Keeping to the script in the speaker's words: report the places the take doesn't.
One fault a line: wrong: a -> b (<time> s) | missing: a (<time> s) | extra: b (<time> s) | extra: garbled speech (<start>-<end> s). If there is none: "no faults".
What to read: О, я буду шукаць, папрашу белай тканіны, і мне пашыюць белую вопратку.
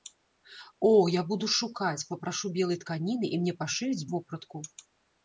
missing: белую (4.1 s)